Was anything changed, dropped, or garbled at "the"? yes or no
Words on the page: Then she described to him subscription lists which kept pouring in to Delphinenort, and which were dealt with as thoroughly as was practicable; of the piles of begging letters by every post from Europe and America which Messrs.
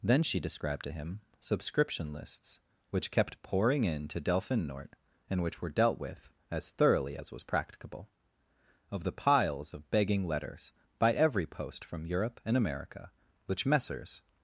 no